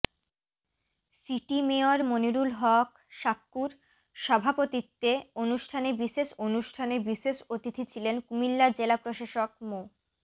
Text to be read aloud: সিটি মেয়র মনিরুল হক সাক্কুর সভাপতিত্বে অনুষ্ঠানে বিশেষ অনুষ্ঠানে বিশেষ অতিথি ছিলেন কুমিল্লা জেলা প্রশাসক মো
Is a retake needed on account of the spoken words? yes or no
no